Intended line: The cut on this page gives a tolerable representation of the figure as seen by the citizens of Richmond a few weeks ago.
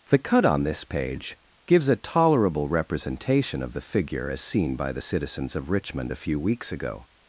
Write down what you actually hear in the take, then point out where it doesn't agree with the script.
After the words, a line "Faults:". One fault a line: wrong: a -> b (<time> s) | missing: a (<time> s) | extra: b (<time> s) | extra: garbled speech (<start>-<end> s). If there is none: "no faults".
The cut on this page gives a tolerable representation of the figure as seen by the citizens of Richmond a few weeks ago.
Faults:
no faults